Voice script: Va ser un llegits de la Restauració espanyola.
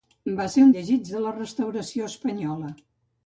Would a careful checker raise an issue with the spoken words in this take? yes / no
no